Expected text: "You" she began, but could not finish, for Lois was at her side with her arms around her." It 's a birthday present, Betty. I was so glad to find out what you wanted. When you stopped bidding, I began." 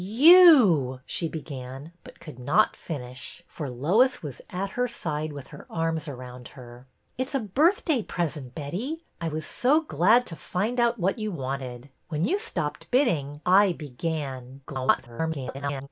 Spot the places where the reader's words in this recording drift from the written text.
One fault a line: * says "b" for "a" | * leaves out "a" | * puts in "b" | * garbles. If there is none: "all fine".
* garbles